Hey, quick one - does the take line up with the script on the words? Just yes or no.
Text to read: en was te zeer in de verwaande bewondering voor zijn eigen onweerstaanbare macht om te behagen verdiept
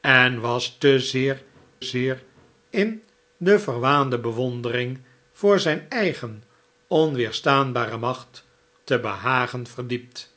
no